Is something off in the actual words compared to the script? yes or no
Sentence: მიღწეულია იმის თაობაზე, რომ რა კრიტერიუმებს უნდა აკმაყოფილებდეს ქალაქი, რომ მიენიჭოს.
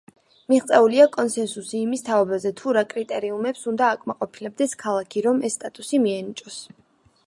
yes